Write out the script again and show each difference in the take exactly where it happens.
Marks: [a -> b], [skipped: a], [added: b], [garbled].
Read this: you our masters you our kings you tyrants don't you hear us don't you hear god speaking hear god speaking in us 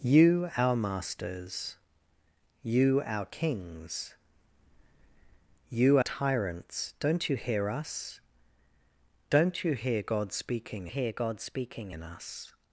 you our masters you our kings you tyrants don't you hear us don't you hear god speaking hear god speaking in us